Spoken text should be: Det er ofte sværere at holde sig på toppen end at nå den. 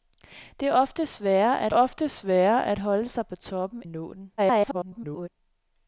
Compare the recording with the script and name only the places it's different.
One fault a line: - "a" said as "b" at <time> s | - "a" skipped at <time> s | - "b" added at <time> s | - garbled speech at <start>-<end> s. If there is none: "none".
- "ofte sværere at" added at 1.7 s
- "end" skipped at 3.8 s
- garbled speech at 4.4-5.3 s